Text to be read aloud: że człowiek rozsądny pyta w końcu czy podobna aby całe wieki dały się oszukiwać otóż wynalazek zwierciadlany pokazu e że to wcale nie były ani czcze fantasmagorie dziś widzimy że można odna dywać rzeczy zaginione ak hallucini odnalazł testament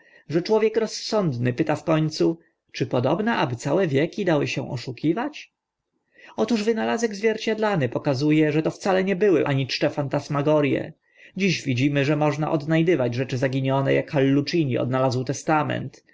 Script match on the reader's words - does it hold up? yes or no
yes